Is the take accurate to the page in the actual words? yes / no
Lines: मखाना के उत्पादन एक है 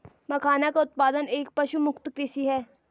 no